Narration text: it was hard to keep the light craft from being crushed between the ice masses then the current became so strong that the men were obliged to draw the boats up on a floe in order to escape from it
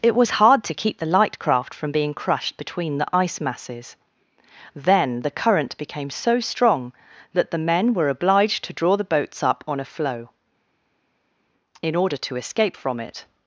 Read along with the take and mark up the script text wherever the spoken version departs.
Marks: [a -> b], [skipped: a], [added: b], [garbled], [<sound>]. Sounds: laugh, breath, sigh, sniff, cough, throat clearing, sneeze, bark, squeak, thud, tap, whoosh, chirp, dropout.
it was hard to keep the light craft from being crushed between the ice masses then the current became so strong that the men were obliged to draw the boats up on a floe in order to escape from it